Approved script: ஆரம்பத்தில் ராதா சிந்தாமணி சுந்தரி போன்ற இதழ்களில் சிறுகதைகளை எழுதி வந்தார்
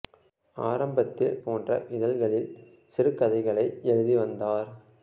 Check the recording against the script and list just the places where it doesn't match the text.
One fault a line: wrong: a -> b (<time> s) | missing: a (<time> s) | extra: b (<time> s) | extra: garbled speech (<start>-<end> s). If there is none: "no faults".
missing: ராதா சிந்தாமணி சுந்தரி (1.4 s)